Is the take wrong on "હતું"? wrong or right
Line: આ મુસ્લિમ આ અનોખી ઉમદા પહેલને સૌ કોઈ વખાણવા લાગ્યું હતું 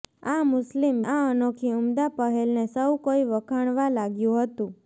right